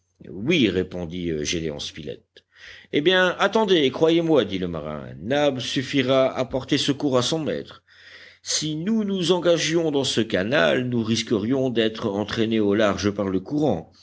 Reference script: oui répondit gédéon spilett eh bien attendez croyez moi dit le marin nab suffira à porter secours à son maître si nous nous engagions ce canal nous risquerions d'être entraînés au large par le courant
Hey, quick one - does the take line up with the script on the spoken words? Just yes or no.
no